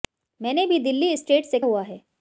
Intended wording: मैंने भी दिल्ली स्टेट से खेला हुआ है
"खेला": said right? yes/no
no